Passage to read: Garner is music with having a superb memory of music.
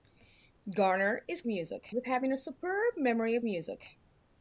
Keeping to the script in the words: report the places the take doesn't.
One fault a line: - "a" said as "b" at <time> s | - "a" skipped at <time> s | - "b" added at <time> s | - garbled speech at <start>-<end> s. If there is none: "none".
none